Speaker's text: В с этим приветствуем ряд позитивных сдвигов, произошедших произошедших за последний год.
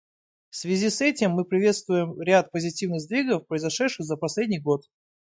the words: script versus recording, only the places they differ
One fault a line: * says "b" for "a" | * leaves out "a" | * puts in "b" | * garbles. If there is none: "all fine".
* puts in "связи"
* puts in "мы"
* leaves out "произошедших"